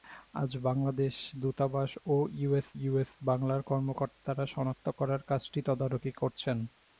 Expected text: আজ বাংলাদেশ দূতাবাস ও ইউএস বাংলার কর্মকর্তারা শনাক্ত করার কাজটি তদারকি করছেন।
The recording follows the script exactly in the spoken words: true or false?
false